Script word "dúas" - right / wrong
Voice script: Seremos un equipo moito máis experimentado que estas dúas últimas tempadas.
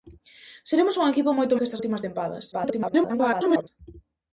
wrong